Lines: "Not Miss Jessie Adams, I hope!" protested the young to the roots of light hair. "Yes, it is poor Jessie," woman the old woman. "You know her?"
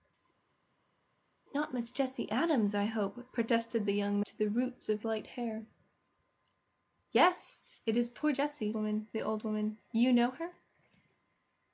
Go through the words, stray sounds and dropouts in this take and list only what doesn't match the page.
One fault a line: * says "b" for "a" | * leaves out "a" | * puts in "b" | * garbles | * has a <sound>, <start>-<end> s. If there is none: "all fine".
all fine